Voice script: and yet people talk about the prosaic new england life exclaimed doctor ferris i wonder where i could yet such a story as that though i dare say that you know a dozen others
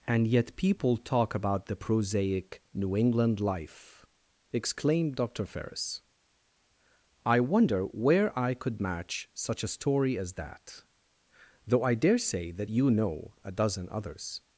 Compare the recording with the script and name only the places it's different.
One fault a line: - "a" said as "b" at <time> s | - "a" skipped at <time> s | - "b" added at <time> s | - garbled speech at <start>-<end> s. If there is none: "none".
- "yet" said as "match" at 8.8 s